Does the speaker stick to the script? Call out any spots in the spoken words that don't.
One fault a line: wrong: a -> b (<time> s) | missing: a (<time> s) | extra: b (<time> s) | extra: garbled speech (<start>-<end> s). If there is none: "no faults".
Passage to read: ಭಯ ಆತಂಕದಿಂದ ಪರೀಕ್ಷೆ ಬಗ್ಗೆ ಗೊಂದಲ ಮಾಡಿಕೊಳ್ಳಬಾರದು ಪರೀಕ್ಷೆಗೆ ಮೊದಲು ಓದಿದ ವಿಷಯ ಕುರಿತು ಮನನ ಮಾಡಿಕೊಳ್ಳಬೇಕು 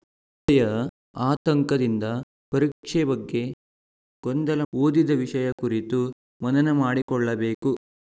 missing: ಮಾಡಿಕೊಳ್ಳಬಾರದು ಪರೀಕ್ಷೆಗೆ ಮೊದಲು (4.6 s)